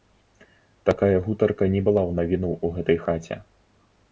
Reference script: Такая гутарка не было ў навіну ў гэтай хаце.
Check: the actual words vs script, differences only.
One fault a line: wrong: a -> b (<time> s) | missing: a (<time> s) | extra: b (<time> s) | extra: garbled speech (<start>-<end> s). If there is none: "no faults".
wrong: было -> была (1.9 s)